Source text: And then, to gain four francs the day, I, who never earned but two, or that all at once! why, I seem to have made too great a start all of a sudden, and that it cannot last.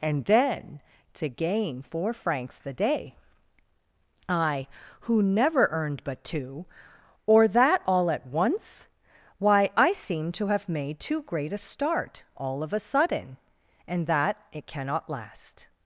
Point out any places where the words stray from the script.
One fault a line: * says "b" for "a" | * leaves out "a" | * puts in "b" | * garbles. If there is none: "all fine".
all fine